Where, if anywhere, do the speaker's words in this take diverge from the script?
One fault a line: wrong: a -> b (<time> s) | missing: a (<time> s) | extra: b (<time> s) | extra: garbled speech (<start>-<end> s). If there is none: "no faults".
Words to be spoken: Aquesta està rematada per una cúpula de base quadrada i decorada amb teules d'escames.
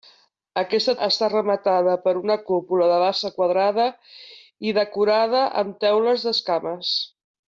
no faults